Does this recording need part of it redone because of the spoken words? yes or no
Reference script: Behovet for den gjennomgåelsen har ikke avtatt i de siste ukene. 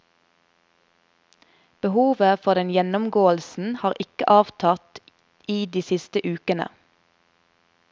no